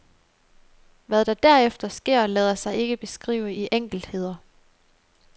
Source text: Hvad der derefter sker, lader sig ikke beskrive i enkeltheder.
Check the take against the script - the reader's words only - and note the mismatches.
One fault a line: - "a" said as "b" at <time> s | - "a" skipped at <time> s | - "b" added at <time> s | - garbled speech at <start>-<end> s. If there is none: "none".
none